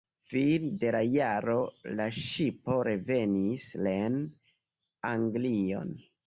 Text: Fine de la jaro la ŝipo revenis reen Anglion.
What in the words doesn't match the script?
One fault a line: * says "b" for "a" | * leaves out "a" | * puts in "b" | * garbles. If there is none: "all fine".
all fine